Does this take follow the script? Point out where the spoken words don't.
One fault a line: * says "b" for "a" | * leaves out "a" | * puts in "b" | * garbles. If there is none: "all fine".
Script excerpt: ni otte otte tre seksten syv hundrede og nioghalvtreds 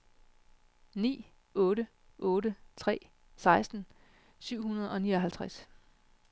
all fine